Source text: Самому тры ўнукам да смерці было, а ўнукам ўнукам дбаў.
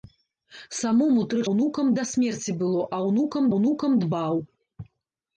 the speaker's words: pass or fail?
pass